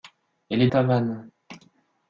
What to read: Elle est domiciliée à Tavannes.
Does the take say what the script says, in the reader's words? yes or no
no